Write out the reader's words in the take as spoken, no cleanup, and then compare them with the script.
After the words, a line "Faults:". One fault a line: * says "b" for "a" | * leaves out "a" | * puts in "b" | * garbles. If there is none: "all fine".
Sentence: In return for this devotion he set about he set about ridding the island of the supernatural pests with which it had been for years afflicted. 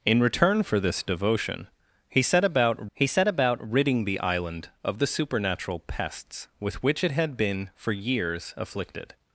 In return for this devotion he set about he set about ridding the island of the supernatural pests with which it had been for years afflicted.
Faults:
all fine